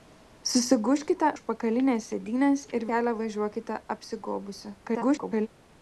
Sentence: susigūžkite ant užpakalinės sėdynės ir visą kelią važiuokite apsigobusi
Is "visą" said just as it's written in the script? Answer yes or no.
no